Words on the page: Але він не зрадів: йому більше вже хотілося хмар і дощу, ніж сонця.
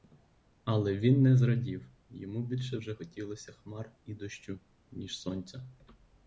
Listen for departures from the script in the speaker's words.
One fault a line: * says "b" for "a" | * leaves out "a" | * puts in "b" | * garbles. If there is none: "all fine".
all fine